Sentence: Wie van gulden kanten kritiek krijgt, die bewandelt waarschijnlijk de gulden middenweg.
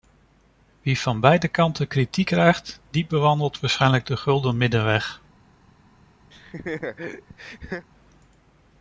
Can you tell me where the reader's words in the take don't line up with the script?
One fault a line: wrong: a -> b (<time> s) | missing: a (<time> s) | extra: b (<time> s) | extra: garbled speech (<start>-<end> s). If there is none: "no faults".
wrong: gulden -> beide (1.2 s)